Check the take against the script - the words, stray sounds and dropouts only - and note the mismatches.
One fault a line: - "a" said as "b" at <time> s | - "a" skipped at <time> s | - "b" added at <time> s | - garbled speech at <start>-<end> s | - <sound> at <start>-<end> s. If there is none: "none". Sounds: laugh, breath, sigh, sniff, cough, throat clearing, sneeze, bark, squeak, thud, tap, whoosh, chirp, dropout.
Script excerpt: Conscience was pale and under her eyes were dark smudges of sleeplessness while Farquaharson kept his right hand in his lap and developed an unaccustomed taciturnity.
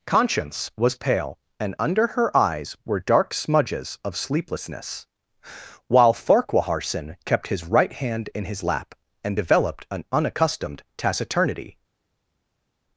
none